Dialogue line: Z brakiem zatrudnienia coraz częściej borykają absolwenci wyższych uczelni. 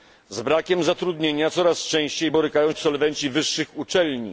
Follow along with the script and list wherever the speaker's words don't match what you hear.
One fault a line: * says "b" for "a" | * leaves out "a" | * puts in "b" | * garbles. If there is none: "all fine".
all fine